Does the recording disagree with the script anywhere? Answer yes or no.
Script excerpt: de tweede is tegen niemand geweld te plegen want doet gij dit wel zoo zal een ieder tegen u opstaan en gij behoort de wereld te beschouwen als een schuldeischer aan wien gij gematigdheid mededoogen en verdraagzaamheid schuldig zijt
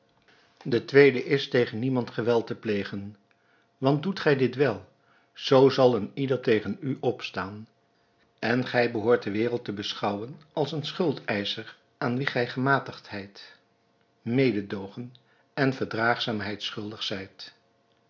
no